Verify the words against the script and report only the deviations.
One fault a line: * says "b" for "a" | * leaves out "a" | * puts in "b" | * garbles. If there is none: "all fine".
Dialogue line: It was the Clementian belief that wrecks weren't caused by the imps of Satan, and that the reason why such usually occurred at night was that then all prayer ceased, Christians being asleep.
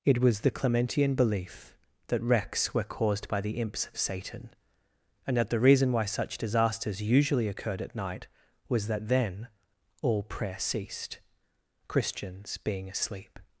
* says "were" for "weren't"
* puts in "disasters"